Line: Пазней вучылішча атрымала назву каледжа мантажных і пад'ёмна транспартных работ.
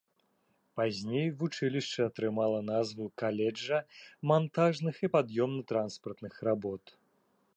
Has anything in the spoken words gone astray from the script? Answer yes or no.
no